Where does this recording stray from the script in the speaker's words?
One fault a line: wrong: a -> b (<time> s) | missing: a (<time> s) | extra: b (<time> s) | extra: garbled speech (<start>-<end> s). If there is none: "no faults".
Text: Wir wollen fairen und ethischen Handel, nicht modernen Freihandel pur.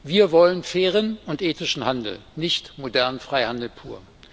no faults